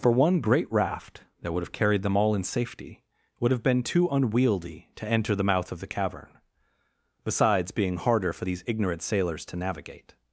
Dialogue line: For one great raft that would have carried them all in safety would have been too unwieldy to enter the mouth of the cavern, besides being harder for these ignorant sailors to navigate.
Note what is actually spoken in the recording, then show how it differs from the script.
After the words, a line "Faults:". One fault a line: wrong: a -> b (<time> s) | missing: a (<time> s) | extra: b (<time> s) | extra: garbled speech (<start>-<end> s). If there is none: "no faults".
For one great raft that would have carried them all in safety would have been too unwieldy to enter the mouth of the cavern, besides being harder for these ignorant sailors to navigate.
Faults:
no faults